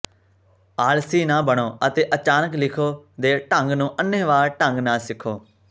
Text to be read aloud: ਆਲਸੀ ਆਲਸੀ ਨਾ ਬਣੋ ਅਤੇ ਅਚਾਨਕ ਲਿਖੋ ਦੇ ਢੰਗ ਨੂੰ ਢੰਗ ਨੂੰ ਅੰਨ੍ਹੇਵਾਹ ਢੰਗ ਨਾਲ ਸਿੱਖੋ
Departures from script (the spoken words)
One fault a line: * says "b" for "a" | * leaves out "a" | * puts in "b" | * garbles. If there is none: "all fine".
* leaves out "ਆਲਸੀ"
* leaves out "ਢੰਗ ਨੂੰ"